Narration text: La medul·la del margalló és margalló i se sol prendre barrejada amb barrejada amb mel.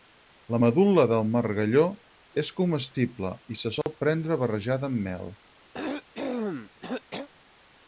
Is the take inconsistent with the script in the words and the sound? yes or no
yes